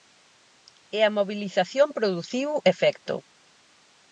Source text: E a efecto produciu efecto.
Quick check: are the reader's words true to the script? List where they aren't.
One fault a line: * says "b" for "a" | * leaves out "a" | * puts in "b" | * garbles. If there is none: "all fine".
* says "mobilización" for "efecto"